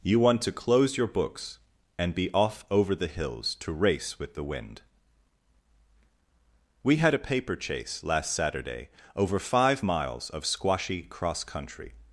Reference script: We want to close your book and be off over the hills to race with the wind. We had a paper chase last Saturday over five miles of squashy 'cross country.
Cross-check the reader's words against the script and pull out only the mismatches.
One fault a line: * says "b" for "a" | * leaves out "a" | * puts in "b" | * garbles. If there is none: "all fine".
* says "You" for "We"
* says "books" for "book"